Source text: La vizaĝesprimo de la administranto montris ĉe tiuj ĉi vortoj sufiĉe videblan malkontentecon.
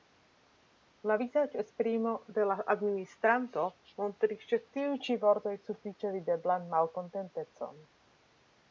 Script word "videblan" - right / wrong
right